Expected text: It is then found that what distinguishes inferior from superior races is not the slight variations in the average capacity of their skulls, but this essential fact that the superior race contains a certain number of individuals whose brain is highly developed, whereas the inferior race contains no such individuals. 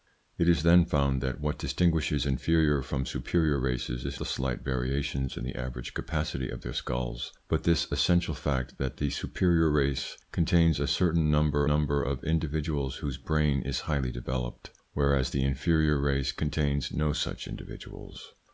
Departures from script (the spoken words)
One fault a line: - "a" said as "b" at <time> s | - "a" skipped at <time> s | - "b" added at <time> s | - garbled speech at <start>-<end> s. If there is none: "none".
- "not" skipped at 4.2 s
- "number" added at 11.6 s